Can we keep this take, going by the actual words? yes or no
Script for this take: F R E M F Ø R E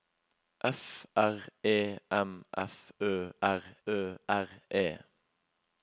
no